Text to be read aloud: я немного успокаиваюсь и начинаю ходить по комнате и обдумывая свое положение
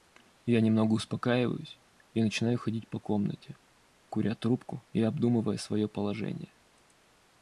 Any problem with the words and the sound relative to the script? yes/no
yes